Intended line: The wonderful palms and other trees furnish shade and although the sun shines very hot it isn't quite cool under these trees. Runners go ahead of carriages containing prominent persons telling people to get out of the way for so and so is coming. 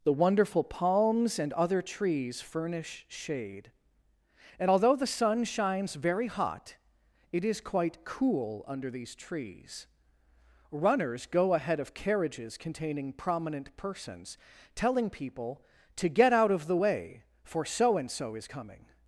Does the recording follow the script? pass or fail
fail